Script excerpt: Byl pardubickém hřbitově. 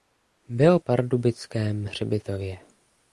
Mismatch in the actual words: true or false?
false